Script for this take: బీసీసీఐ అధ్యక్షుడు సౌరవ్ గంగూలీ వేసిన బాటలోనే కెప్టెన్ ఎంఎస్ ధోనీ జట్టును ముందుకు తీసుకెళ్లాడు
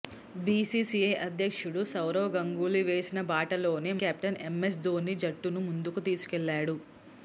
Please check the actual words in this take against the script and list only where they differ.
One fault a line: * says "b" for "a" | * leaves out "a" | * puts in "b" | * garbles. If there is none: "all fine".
all fine